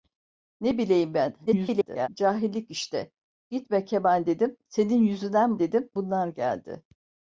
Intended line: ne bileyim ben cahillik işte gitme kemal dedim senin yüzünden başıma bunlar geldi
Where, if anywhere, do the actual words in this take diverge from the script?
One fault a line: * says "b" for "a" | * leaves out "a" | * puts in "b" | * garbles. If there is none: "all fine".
* garbles
* says "dedim" for "başıma"